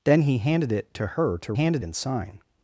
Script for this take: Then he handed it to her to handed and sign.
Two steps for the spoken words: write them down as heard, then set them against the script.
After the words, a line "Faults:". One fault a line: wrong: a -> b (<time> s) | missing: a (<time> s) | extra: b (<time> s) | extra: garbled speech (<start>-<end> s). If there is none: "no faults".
Then he handed it to her to handed and sign.
Faults:
no faults